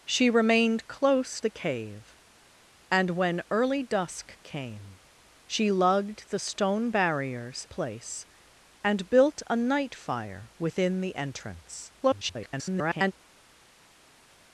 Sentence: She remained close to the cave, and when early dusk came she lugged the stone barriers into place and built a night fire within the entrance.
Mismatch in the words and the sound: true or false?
true